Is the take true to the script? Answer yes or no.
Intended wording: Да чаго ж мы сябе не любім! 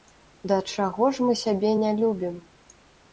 yes